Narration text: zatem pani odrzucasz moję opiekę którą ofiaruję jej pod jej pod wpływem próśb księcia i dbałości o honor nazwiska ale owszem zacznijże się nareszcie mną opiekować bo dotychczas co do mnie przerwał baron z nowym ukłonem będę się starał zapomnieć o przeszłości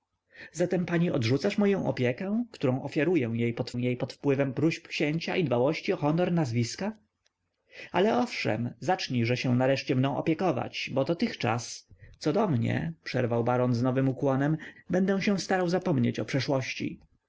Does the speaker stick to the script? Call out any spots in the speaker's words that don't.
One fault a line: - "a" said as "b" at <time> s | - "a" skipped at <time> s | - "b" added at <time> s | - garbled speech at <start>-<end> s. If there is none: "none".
none